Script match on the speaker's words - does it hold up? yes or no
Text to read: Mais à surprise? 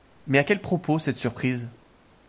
no